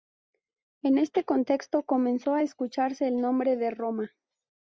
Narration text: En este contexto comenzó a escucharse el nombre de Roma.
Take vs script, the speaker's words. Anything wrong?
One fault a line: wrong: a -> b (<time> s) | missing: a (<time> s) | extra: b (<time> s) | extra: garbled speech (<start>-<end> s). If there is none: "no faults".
no faults